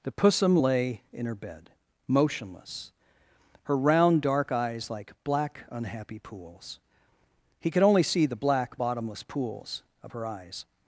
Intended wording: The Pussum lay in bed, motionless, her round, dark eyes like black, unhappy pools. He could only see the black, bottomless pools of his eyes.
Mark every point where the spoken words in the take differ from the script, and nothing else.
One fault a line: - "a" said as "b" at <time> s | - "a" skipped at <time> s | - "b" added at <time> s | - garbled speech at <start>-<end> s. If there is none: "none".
- "her" added at 1.3 s
- "his" said as "her" at 10.1 s